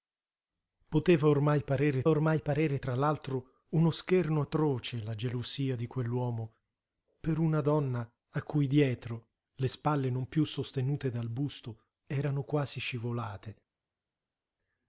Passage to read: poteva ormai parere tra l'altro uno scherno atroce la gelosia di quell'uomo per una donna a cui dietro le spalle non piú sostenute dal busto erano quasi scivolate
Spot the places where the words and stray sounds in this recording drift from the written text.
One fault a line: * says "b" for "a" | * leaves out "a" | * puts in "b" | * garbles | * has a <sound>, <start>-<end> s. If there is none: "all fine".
* puts in "ormai parere"